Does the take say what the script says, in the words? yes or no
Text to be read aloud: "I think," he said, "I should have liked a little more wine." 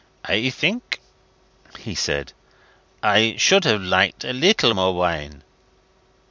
yes